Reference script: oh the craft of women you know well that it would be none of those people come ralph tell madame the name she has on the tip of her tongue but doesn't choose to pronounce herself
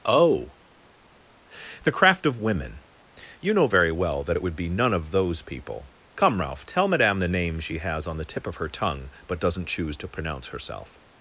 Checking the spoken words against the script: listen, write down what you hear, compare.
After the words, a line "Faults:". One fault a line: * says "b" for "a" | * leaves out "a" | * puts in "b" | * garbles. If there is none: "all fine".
oh the craft of women you know very well that it would be none of those people come ralph tell madame the name she has on the tip of her tongue but doesn't choose to pronounce herself
Faults:
* puts in "very"